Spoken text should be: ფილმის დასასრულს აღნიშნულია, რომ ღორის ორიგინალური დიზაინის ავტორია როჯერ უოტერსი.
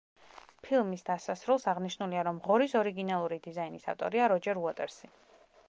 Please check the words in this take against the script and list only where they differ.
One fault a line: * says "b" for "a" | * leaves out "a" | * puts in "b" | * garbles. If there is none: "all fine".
all fine